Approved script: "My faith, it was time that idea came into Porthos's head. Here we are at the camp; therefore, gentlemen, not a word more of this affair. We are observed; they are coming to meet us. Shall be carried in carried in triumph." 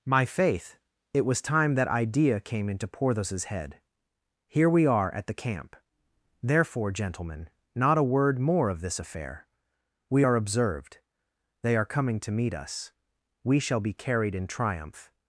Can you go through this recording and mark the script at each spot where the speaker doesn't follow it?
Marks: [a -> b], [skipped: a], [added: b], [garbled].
"My faith, it was time that idea came into Porthos's head. Here we are at the camp; therefore, gentlemen, not a word more of this affair. We are observed; they are coming to meet us. [added: We] Shall be carried in [skipped: carried in] triumph."